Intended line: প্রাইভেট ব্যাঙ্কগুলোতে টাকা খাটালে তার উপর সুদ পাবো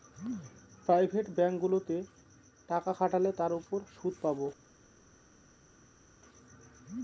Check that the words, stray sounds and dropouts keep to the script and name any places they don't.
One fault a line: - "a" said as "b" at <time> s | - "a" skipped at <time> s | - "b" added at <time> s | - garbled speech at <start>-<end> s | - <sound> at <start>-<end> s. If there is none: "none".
none